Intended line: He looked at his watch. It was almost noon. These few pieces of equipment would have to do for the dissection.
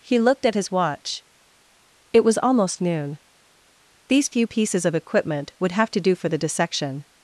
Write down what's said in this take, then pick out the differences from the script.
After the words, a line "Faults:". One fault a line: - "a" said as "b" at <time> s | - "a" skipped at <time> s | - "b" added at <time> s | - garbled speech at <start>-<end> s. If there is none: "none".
He looked at his watch. It was almost noon. These few pieces of equipment would have to do for the dissection.
Faults:
none